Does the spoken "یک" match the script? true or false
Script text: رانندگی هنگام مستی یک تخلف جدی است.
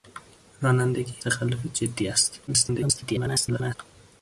false